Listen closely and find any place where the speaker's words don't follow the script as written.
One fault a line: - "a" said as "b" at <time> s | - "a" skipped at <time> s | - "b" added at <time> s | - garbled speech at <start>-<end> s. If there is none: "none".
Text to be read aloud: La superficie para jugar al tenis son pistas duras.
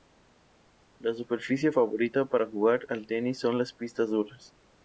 - "favorita" added at 1.7 s
- "las" added at 3.6 s